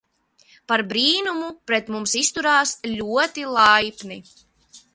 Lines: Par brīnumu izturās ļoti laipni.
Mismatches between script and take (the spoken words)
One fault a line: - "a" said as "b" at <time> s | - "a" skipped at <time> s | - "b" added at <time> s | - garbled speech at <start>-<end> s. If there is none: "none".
- "pret mums" added at 1.7 s